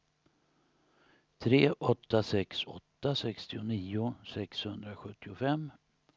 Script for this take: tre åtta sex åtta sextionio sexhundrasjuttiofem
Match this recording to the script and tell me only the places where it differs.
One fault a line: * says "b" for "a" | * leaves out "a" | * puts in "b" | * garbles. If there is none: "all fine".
all fine